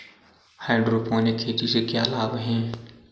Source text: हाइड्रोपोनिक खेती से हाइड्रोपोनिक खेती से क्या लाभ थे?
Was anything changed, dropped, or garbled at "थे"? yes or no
yes